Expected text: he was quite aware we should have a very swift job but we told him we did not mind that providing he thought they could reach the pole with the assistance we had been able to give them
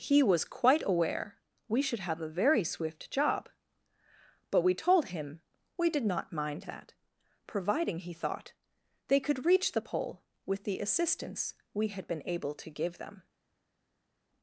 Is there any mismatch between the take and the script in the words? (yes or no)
no